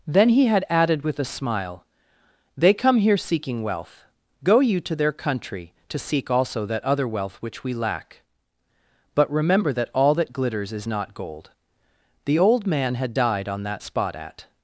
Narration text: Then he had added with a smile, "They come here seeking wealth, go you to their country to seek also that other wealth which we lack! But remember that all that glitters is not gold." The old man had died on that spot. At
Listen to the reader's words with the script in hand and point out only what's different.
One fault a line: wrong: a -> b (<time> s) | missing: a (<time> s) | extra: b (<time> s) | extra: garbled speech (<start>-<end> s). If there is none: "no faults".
no faults